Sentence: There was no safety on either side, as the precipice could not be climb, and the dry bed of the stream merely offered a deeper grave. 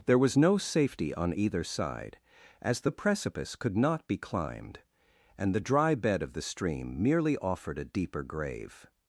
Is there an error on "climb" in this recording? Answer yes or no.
yes